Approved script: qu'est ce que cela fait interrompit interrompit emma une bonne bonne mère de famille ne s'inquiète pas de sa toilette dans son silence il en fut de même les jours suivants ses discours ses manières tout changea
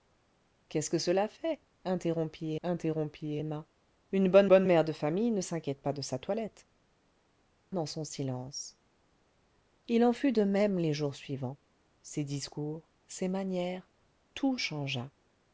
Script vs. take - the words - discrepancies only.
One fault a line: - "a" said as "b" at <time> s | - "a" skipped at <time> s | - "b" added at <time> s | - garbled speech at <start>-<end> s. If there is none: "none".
none